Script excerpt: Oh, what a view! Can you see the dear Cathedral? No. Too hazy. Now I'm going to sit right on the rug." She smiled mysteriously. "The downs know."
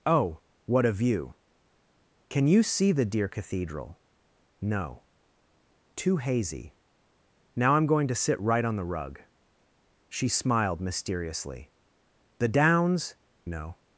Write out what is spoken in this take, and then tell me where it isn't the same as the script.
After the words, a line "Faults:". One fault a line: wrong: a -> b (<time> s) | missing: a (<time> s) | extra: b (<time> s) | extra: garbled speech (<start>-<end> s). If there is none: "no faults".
Oh, what a view! Can you see the dear Cathedral? No. Too hazy. Now I'm going to sit right on the rug." She smiled mysteriously. "The downs know."
Faults:
no faults